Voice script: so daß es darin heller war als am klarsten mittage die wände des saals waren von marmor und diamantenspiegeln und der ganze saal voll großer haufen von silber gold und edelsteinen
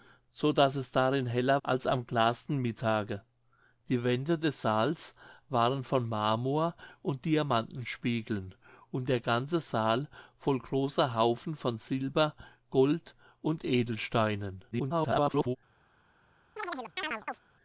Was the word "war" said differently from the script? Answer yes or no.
yes